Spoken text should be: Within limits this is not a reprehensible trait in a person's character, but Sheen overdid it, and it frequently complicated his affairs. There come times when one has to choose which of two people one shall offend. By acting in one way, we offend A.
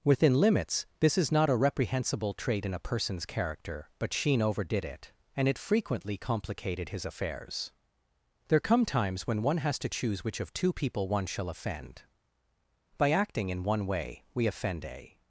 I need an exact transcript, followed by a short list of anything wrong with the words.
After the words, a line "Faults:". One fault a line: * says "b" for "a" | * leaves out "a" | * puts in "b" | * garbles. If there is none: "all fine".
Within limits this is not a reprehensible trait in a person's character, but Sheen overdid it, and it frequently complicated his affairs. There come times when one has to choose which of two people one shall offend. By acting in one way, we offend A.
Faults:
all fine